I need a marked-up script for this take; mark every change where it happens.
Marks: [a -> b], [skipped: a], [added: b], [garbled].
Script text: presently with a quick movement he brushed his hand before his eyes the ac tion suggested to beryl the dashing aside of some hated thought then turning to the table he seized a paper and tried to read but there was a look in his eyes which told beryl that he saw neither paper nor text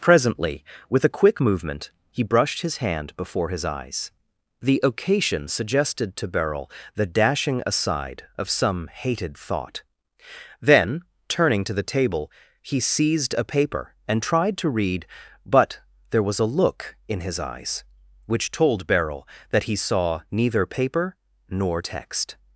presently with a quick movement he brushed his hand before his eyes the [ac tion -> occasion] suggested to beryl the dashing aside of some hated thought then turning to the table he seized a paper and tried to read but there was a look in his eyes which told beryl that he saw neither paper nor text